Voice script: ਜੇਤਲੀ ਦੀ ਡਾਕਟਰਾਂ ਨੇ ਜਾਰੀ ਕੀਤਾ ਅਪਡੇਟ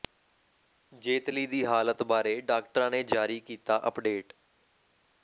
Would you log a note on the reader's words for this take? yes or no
yes